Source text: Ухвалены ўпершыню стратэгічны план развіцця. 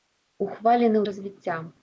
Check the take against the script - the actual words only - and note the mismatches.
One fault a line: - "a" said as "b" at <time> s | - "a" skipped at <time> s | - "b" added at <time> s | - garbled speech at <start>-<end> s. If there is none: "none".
- "ўпершыню стратэгічны план" skipped at 1.0 s